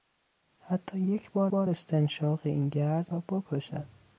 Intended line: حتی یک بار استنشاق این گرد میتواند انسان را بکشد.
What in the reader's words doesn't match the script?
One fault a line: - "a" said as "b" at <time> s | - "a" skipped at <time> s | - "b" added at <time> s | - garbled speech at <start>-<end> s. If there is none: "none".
- "بار" added at 1.5 s
- "میتواند انسان" skipped at 3.1 s